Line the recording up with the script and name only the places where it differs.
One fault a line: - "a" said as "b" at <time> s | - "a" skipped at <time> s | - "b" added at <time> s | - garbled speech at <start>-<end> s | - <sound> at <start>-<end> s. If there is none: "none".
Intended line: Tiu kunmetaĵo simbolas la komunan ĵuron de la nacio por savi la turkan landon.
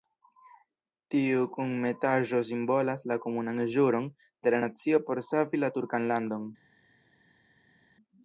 none